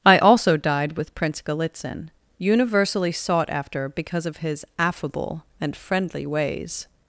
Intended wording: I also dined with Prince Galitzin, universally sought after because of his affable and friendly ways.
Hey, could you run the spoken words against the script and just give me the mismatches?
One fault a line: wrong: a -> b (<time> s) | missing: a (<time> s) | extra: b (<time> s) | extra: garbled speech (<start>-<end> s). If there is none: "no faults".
wrong: dined -> died (0.6 s)